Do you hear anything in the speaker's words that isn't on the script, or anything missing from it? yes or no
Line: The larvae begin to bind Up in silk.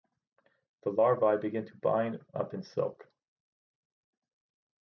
no